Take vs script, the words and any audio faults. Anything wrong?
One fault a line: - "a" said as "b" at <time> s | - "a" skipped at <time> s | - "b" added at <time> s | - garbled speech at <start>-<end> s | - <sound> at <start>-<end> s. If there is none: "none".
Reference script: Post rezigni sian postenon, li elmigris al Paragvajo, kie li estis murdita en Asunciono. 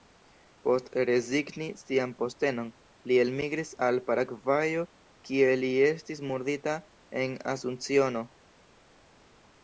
none